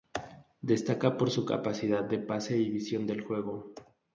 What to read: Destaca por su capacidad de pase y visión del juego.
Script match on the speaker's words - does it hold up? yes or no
yes